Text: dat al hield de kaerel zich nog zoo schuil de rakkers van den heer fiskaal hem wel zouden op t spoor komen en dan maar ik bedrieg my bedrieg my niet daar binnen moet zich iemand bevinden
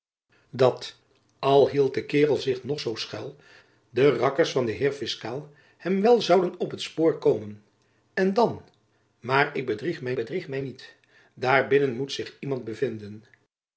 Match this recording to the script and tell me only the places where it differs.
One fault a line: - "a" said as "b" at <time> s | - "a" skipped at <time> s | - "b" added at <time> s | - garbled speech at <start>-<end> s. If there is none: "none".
none